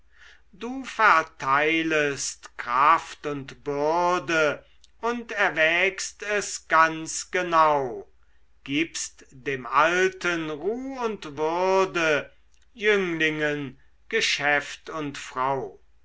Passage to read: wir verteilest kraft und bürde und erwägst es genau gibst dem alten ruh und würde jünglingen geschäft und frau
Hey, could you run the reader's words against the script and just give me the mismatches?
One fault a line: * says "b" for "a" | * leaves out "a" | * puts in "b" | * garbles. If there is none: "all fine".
* says "du" for "wir"
* puts in "ganz"